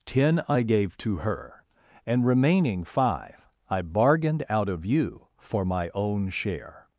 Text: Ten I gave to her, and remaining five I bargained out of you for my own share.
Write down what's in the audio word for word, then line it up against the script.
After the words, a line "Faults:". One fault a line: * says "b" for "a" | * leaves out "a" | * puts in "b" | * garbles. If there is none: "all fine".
Ten I gave to her, and remaining five I bargained out of you for my own share.
Faults:
all fine